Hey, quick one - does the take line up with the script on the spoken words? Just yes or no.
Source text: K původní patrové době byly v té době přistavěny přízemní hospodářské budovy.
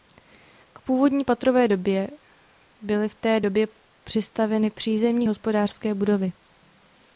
yes